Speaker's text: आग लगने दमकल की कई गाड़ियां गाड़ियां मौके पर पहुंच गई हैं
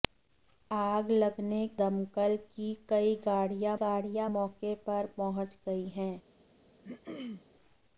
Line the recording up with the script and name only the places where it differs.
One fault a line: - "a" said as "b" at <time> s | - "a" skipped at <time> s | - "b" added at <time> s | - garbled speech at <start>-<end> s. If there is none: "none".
none